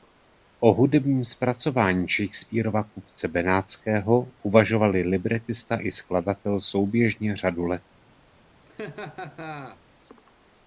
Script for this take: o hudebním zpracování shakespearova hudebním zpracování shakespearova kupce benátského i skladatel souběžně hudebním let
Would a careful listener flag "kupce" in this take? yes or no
yes